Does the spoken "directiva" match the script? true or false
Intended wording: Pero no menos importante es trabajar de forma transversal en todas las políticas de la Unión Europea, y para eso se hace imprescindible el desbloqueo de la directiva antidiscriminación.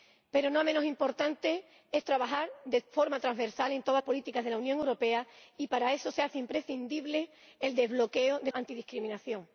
false